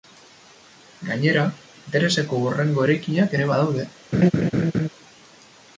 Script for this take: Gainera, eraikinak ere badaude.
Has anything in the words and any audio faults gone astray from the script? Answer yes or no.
yes